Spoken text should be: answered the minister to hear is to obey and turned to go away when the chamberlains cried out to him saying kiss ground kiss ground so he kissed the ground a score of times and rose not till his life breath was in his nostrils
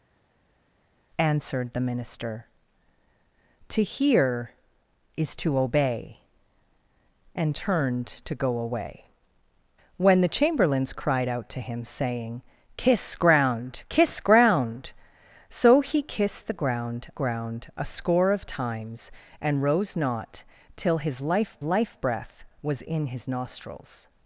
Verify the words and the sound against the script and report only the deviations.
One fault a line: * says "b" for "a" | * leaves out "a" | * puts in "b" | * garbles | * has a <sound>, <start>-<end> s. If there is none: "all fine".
* puts in "ground"
* puts in "life"